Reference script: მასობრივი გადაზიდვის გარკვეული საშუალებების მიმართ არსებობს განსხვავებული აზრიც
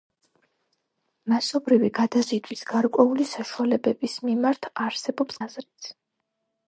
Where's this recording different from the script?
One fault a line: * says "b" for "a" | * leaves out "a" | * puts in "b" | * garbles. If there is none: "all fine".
* leaves out "განსხვავებული"